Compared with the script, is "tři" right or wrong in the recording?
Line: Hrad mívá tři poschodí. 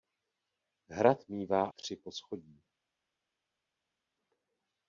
right